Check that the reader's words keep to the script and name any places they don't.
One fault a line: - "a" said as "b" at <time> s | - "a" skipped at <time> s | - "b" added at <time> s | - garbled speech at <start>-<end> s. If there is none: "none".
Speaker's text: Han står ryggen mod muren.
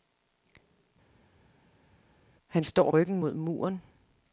none